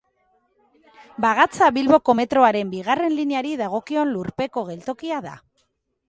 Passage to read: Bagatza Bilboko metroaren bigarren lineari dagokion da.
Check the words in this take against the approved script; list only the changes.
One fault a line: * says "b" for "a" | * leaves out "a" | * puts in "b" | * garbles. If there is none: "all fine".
* puts in "lurpeko geltokia"